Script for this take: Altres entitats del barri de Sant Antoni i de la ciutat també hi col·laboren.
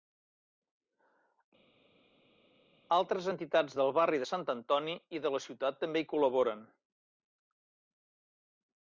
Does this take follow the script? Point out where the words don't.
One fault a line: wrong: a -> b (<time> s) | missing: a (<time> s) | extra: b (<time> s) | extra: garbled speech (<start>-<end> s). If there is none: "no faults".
no faults